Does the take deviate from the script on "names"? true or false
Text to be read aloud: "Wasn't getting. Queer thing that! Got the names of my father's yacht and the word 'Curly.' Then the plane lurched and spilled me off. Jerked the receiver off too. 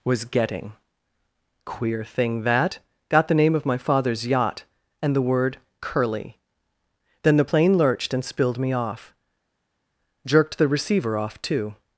true